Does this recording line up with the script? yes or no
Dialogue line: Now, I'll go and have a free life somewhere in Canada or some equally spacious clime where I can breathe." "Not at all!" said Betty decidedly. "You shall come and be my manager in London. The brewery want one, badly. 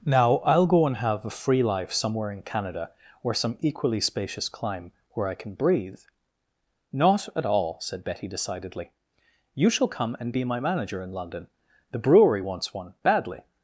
no